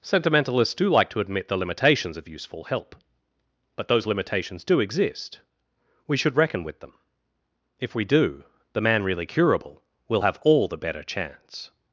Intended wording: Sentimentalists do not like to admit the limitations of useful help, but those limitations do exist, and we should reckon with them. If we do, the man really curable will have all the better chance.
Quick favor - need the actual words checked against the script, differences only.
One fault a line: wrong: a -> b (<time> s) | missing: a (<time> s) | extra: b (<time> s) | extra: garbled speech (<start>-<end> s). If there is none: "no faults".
missing: not (0.9 s)
missing: and (5.4 s)